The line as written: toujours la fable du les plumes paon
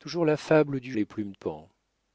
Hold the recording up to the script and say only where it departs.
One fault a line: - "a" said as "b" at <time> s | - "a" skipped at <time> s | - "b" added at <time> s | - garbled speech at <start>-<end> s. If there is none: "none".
none